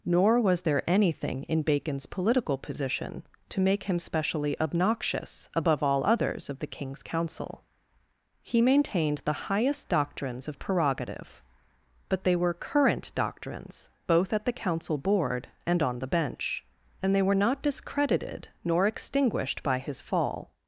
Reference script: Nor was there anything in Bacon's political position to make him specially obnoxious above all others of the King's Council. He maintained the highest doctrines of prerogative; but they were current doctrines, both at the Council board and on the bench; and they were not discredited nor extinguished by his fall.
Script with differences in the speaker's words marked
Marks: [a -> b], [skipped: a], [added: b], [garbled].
Nor was there anything in Bacon's political position to make him specially obnoxious above all others of the King's Council. He maintained the highest doctrines of prerogative; but they were current doctrines, both at the Council board and on the bench; and they were not discredited nor extinguished by his fall.